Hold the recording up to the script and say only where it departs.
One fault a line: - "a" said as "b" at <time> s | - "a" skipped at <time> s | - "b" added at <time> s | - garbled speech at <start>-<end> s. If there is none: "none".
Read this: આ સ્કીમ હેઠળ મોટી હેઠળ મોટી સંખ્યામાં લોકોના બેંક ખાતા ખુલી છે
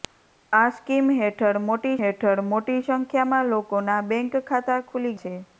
none